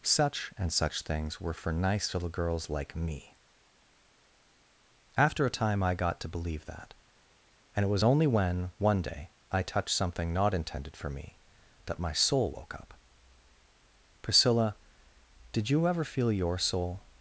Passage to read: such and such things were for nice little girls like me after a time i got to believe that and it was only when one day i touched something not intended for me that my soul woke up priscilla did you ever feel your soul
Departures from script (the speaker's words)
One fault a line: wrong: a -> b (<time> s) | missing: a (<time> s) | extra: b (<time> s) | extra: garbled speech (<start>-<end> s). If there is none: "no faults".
no faults